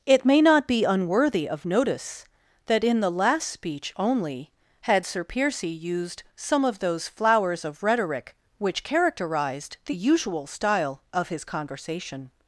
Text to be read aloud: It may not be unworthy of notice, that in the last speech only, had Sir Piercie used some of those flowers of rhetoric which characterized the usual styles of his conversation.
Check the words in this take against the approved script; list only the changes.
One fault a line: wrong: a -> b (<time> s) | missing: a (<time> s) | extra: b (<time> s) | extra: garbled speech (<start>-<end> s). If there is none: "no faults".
wrong: styles -> style (10.5 s)